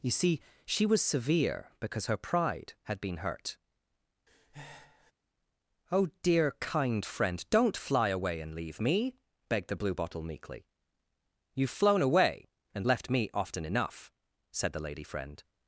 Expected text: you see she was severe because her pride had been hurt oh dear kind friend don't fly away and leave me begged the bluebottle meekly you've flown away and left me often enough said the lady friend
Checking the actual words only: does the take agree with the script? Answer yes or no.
yes